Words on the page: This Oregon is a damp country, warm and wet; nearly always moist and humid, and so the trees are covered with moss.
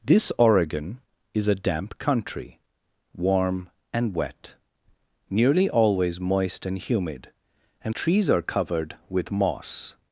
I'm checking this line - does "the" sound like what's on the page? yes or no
no